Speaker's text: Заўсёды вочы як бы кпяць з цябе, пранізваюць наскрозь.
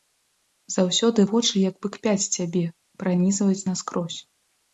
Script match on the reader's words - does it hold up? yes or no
yes